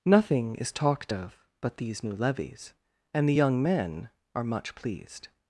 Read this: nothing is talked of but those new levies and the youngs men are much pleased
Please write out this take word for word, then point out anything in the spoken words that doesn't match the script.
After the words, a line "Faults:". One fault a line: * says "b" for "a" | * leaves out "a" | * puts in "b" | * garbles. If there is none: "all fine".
nothing is talked of but these new levies and the young men are much pleased
Faults:
* says "these" for "those"
* says "young" for "youngs"